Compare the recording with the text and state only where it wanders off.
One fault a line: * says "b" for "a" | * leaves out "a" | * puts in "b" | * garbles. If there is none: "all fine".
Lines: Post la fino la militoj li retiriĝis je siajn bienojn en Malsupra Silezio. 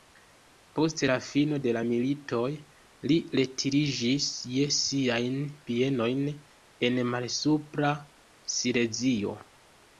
* puts in "de"